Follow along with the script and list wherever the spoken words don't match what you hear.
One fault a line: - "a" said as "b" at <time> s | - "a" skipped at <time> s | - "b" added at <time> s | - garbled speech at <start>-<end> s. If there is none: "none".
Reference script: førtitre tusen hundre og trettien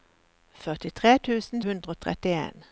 none